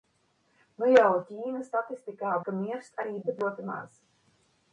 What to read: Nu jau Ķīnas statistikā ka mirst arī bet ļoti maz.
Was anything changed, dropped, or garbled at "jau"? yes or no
no